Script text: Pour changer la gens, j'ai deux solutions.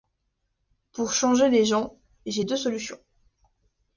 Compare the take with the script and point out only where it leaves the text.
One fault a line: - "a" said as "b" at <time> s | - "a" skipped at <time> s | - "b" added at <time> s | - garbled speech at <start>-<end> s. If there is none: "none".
- "la" said as "les" at 1.5 s